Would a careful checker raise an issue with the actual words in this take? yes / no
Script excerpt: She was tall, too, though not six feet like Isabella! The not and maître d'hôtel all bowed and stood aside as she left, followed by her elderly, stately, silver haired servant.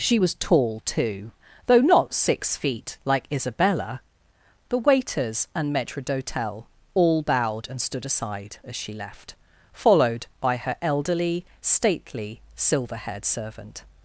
yes